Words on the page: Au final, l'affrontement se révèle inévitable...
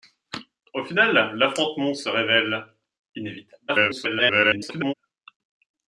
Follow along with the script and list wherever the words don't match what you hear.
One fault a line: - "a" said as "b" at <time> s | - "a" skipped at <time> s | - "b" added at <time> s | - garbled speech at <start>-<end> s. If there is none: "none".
- garbled speech at 3.7-4.9 s